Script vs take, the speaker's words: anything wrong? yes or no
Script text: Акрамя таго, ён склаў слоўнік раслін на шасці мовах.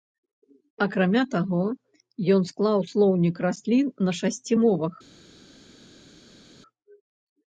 no